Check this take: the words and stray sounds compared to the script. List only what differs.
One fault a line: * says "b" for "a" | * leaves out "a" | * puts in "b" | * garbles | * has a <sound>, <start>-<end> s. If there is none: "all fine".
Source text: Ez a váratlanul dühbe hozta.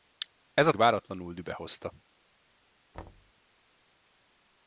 * has a thud, 2.9-3.3 s